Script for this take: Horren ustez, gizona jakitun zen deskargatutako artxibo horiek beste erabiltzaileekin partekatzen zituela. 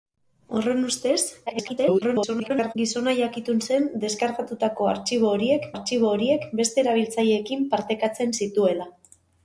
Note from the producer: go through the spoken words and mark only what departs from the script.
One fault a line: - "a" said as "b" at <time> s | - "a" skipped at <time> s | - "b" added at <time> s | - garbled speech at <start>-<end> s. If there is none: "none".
- garbled speech at 1.5-2.7 s
- "artxibo horiek" added at 5.7 s